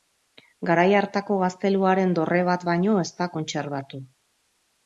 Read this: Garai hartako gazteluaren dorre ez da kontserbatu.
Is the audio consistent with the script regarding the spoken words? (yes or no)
no